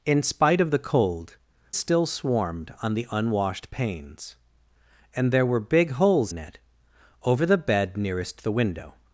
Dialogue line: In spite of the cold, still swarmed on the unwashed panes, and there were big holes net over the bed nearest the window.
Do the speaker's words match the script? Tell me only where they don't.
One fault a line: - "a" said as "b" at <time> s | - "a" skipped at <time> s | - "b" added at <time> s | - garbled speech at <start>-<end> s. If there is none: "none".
none